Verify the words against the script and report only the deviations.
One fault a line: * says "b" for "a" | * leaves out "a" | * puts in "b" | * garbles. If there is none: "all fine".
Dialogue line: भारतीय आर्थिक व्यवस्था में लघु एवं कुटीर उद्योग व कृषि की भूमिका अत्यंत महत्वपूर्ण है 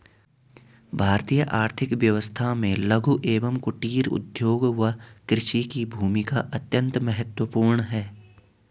all fine